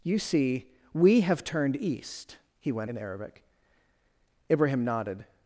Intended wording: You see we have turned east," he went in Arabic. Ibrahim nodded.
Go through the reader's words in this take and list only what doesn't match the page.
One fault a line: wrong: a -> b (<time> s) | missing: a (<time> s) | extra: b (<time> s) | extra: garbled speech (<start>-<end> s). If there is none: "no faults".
no faults